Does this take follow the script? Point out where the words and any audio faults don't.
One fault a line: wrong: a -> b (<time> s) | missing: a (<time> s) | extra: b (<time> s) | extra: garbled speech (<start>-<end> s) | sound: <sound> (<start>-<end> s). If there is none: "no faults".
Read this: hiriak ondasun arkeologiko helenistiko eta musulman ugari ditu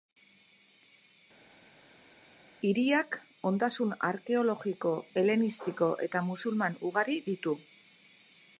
no faults